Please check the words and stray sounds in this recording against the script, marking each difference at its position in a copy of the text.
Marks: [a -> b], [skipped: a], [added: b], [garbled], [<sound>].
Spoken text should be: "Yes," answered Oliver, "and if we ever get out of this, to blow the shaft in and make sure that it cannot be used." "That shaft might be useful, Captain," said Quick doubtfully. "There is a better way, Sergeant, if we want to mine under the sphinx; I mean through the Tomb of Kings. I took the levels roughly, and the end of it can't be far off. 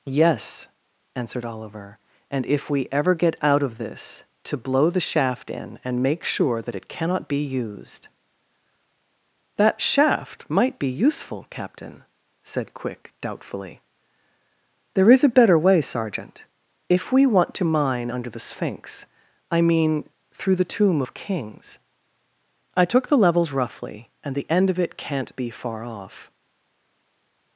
"Yes," answered Oliver, "and if we ever get out of this, to blow the shaft in and make sure that it cannot be used." "That shaft might be useful, Captain," said Quick doubtfully. "There is a better way, Sergeant, if we want to mine under the sphinx; I mean through the Tomb of Kings. I took the levels roughly, and the end of it can't be far off.